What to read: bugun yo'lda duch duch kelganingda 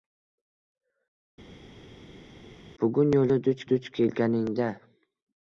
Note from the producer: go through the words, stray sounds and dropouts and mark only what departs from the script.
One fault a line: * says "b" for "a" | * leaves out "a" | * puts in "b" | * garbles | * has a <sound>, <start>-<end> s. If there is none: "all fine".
all fine